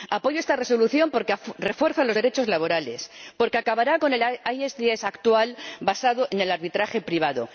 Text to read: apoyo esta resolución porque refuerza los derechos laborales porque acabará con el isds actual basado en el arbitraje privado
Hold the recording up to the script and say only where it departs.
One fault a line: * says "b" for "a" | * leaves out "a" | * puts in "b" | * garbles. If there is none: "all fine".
all fine